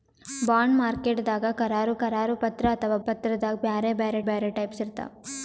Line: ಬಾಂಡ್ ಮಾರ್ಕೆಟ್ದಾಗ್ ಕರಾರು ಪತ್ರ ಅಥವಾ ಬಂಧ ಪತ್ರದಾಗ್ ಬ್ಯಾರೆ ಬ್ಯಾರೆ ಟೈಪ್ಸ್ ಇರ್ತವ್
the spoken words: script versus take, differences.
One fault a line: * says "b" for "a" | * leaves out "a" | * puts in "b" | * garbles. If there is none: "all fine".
* puts in "ಕರಾರು"
* says "ಪತ್ರದಾಗ್ ಬ್ಯಾರೆ" for "ಬಂಧ ಪತ್ರದಾಗ್"